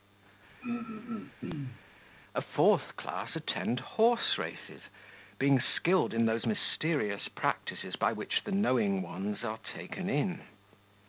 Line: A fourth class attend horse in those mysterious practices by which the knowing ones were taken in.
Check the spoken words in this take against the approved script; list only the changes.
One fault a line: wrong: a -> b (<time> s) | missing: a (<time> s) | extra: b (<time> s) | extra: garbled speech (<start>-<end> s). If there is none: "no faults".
extra: races being skilled (4.4 s)
wrong: were -> are (9.5 s)